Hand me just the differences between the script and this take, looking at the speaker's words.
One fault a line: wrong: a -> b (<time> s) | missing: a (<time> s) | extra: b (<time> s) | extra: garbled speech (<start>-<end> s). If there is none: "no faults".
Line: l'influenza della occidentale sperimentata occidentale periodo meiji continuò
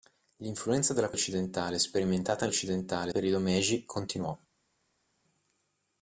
no faults